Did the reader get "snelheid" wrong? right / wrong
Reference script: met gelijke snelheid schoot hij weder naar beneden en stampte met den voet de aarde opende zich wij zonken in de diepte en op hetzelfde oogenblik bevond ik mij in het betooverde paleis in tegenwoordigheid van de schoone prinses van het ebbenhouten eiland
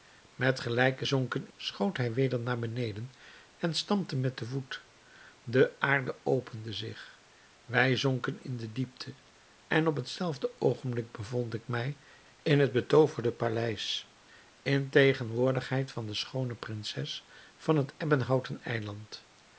wrong